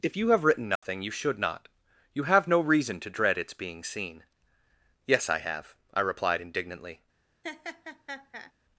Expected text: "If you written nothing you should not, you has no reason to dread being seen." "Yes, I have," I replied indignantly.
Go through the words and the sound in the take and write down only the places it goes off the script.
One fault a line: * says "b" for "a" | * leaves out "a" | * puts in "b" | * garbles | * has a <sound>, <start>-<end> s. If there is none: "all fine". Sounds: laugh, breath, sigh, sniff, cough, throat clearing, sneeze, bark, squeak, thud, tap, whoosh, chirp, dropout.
* puts in "have"
* has a dropout, 0.8-0.8 s
* says "have" for "has"
* puts in "its"
* has a laugh, 7.4-8.5 s